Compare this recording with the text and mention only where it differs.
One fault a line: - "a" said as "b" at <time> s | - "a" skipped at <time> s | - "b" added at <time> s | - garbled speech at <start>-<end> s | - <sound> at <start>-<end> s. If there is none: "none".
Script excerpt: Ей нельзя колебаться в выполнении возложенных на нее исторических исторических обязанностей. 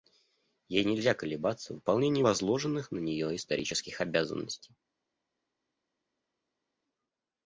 - "исторических" skipped at 4.0 s